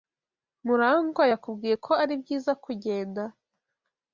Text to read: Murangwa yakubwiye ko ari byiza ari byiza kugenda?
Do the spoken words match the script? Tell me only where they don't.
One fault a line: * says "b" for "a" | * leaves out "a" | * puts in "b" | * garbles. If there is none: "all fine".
* leaves out "ari byiza"